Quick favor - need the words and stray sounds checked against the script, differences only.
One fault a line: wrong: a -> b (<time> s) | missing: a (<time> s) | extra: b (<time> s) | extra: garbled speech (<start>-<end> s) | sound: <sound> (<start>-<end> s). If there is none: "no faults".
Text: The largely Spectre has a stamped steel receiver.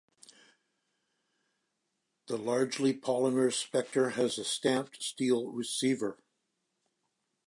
extra: polymer (2.9 s)